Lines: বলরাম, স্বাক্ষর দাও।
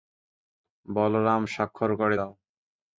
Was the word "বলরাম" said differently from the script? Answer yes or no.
no